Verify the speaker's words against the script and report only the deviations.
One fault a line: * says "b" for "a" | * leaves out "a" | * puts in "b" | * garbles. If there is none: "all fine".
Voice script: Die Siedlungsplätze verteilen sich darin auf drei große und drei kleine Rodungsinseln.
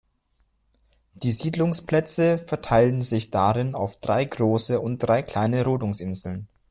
all fine